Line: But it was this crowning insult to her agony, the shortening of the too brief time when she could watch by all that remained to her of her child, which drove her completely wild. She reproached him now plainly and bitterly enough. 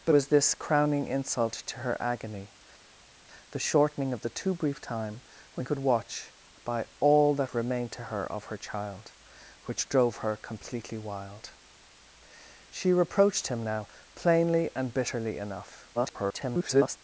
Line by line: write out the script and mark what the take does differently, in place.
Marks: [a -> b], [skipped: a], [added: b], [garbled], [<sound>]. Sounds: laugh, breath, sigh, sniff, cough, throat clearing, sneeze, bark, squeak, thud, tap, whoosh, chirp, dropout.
But [skipped: it] was this crowning insult to her agony, the shortening of the too brief time when [skipped: she] could watch by all that remained to her of her child, which drove her completely wild. She reproached him now plainly and bitterly enough. [garbled]